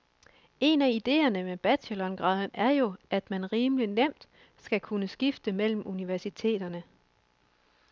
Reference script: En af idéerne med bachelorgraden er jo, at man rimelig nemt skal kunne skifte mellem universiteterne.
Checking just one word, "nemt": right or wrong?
right